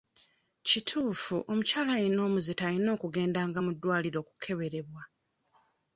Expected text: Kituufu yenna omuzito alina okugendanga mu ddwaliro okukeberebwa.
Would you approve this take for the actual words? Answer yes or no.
no